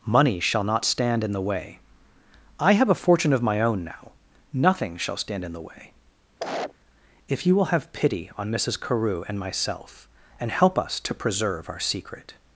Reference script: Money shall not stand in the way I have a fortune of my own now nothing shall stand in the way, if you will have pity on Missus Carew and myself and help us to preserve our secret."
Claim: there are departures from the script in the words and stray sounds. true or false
true